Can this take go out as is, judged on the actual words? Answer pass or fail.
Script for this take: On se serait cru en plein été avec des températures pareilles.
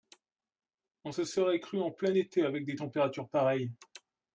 pass